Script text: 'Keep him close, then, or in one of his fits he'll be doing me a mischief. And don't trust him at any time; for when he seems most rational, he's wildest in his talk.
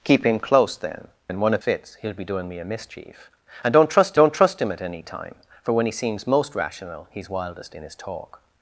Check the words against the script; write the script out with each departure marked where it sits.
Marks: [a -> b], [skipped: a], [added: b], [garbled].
'Keep him close, then, [skipped: or] in one of [skipped: his] fits he'll be doing me a mischief. And don't trust [added: don't trust] him at any time; for when he seems most rational, he's wildest in his talk.